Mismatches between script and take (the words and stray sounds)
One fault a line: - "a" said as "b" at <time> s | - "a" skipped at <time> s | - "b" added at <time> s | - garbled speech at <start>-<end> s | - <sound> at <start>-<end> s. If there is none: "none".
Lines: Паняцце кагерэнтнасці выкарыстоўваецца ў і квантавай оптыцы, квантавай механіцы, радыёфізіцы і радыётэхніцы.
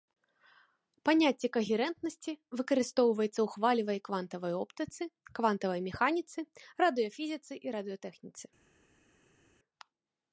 - "хвалевай" added at 3.5 s